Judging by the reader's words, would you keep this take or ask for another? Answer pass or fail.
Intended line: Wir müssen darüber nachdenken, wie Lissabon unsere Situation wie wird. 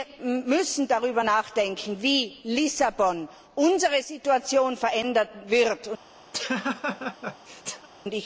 fail